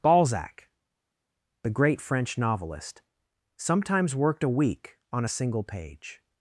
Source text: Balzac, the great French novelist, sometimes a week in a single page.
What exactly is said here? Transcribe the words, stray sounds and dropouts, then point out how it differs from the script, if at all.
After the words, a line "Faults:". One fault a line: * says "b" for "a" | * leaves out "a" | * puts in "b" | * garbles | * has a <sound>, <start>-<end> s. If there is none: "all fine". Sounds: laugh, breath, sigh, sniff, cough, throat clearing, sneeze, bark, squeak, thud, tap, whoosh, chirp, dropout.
Balzac, the great French novelist, sometimes worked a week on a single page.
Faults:
* puts in "worked"
* says "on" for "in"